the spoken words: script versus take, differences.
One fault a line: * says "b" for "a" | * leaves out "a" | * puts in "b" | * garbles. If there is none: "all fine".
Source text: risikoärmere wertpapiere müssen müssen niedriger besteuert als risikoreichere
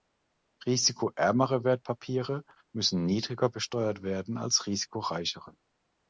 * leaves out "müssen"
* puts in "werden"